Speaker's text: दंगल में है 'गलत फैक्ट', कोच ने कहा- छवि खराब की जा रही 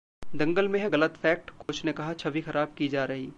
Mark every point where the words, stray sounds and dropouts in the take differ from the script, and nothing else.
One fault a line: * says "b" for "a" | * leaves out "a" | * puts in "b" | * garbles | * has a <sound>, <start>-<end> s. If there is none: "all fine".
* has a dropout, 1.6-1.7 s